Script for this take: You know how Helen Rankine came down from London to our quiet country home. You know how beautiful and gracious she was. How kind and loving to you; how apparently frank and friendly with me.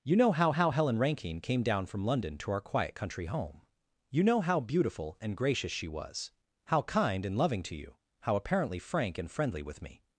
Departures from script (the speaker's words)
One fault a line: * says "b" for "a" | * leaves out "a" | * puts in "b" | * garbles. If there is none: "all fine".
* puts in "how"